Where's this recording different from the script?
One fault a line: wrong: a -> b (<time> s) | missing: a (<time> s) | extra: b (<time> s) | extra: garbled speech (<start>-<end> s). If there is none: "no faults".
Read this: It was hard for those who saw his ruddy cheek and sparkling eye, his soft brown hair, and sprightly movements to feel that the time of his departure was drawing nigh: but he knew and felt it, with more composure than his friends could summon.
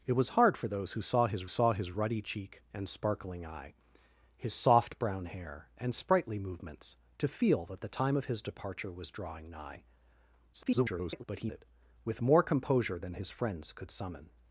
extra: saw his (1.5 s)
extra: garbled speech (10.5-11.2 s)
missing: knew and felt (11.5 s)